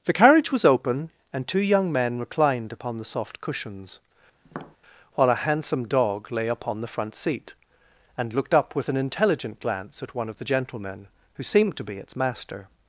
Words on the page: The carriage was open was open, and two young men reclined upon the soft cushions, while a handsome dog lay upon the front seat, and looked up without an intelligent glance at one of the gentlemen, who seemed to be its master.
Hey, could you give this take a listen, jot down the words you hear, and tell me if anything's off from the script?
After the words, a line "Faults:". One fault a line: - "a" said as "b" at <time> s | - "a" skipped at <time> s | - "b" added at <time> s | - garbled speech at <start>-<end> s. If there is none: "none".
The carriage was open, and two young men reclined upon the soft cushions, while a handsome dog lay upon the front seat, and looked up with an intelligent glance at one of the gentlemen, who seemed to be its master.
Faults:
- "was open" skipped at 1.1 s
- "without" said as "with" at 8.7 s